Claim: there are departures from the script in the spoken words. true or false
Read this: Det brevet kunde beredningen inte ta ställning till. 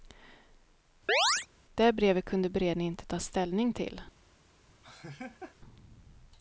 false